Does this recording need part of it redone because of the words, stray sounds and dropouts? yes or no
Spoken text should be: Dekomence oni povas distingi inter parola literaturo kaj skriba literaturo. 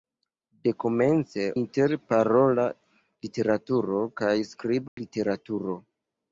yes